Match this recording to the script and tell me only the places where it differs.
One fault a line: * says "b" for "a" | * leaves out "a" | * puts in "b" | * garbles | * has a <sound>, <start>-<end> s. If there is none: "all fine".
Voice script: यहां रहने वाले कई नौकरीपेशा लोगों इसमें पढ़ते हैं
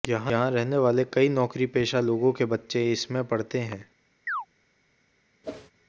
* puts in "के बच्चे"
* has a chirp, 4.3-4.5 s
* has a whoosh, 5.4-5.7 s